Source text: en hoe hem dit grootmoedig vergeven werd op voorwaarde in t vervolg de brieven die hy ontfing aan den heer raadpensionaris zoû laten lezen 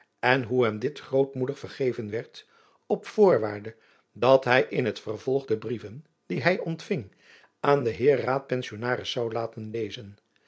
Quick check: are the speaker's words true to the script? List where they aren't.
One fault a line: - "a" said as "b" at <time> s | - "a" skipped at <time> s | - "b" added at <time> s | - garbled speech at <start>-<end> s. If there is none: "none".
- "dat hy" added at 4.1 s